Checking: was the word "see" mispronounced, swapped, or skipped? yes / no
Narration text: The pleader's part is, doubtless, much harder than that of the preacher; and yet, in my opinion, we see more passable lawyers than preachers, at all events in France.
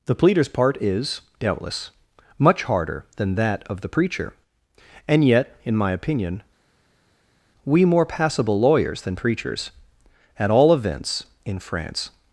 yes